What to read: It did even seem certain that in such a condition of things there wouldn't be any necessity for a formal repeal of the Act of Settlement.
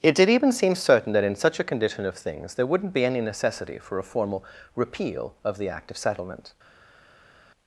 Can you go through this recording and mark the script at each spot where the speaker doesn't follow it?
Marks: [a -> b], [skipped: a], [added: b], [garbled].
It did even seem certain that in such a condition of things there wouldn't be any necessity for a formal repeal of the Act of Settlement.